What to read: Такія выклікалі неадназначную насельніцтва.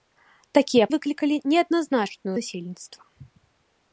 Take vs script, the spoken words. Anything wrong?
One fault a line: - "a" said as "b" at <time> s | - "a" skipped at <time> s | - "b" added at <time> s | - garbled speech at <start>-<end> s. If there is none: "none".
none